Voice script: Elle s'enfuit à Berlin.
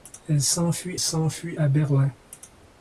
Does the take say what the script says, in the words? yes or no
no